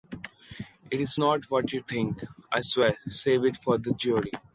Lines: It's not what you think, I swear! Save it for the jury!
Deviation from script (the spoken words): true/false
false